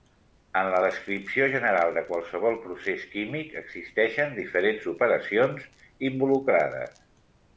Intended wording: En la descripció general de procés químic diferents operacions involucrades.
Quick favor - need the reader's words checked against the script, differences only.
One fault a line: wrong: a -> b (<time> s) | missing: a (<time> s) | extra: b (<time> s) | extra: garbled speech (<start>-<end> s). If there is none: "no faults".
extra: qualsevol (2.1 s)
extra: existeixen (3.6 s)